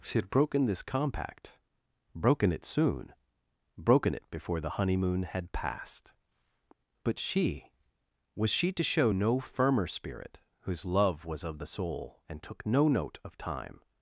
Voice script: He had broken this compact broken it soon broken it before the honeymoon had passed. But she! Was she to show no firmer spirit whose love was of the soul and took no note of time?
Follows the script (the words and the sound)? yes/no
no